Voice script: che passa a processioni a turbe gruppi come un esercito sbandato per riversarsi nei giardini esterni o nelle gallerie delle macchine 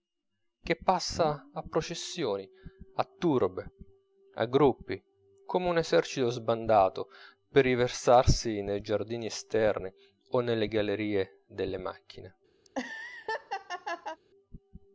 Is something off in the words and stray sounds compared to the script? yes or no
yes